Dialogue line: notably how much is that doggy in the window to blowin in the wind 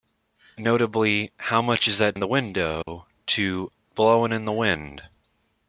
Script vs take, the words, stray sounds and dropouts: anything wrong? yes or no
yes